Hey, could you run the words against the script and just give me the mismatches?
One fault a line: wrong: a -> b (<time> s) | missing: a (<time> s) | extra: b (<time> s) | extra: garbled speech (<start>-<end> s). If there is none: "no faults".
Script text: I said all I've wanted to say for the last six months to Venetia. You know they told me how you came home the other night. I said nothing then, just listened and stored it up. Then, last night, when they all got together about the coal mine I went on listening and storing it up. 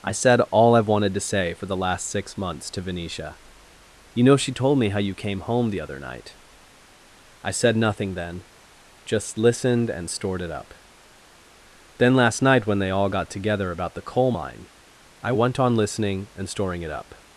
wrong: they -> she (4.4 s)